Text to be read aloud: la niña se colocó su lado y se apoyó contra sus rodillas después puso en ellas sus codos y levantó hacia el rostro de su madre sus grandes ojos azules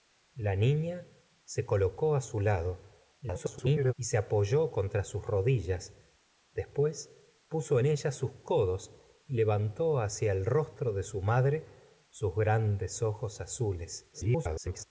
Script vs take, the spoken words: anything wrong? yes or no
yes